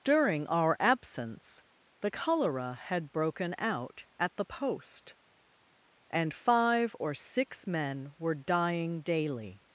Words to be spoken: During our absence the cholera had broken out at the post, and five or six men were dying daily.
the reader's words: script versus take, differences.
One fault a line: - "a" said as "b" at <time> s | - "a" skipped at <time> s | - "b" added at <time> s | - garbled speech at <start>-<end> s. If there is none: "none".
none